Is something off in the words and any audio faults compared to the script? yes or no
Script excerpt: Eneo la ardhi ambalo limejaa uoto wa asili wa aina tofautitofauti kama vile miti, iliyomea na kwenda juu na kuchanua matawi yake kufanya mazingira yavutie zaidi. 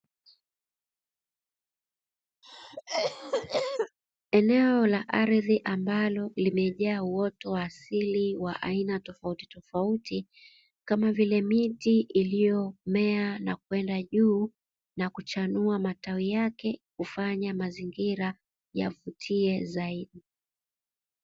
yes